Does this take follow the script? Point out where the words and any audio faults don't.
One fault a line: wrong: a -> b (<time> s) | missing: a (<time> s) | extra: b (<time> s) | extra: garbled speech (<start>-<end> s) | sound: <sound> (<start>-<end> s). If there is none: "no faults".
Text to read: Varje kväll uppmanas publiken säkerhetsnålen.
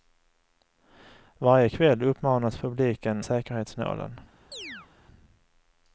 sound: chirp (4.5-4.9 s)